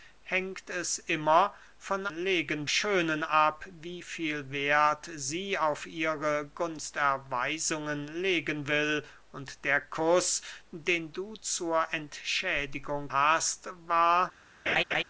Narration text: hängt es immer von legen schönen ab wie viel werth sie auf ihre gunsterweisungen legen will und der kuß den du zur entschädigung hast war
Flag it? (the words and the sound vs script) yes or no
yes